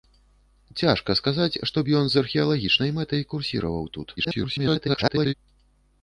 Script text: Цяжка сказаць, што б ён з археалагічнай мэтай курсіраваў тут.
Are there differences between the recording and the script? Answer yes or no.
yes